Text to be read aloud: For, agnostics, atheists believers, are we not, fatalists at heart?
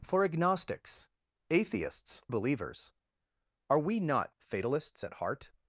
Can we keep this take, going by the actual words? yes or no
yes